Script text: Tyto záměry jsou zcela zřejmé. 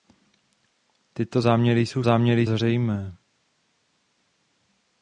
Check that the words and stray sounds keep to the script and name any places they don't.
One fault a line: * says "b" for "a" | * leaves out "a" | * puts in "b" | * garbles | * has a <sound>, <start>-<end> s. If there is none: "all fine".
* says "záměry" for "zcela"